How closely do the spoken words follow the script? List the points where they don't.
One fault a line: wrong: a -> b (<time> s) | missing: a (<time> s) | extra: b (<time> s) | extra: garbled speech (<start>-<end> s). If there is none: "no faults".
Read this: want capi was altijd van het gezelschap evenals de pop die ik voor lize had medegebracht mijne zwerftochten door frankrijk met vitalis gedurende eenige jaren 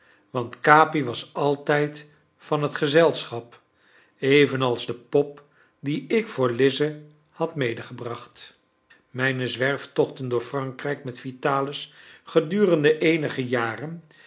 no faults